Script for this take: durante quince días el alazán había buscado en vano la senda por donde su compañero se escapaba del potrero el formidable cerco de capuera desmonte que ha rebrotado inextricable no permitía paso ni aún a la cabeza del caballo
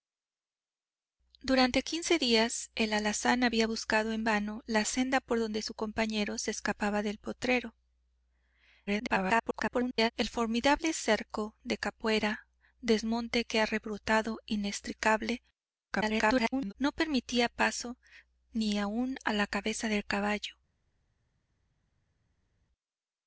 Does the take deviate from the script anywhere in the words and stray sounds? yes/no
yes